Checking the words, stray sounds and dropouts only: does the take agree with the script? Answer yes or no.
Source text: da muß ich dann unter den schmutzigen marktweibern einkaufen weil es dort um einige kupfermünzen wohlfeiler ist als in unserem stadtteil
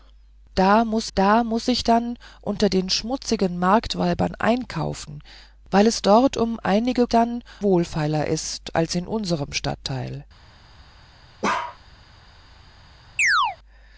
no